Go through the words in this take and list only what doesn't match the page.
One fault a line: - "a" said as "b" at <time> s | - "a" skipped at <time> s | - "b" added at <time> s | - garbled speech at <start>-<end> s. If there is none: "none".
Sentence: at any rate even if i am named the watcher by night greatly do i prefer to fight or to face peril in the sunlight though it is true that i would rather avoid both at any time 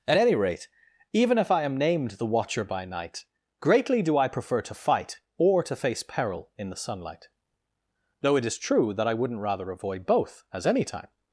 - "would" said as "wouldn't" at 9.1 s
- "at" said as "as" at 10.5 s